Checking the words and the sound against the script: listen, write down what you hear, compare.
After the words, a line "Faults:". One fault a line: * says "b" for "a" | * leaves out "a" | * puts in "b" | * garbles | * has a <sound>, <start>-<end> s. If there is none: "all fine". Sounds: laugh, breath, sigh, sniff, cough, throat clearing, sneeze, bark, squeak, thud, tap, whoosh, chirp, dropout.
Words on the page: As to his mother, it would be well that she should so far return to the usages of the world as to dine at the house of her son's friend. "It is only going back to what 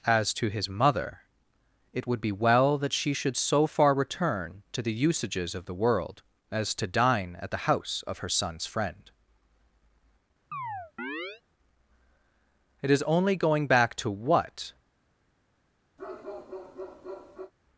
As to his mother, it would be well that she should so far return to the usages of the world as to dine at the house of her son's friend. "It is only going back to what
Faults:
* has a chirp, 10.5-11.4 s
* has a bark, 16.0-17.5 s